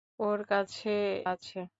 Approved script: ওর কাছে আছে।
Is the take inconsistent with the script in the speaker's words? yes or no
no